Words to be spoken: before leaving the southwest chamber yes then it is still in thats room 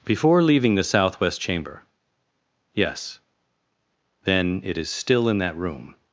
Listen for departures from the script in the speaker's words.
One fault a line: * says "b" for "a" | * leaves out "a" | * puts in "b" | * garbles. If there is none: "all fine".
* says "that" for "thats"